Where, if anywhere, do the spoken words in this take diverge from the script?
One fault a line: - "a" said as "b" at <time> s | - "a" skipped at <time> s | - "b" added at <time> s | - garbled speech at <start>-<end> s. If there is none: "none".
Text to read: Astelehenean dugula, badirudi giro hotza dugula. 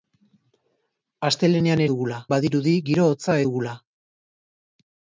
none